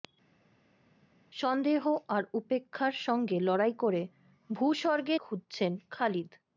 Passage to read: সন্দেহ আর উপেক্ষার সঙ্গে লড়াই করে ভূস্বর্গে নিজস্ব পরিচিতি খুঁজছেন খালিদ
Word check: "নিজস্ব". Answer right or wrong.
wrong